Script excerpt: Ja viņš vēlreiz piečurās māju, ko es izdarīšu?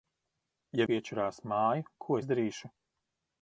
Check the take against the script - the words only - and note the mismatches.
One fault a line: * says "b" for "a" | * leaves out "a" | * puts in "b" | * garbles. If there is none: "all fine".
* leaves out "viņš vēlreiz"
* leaves out "es"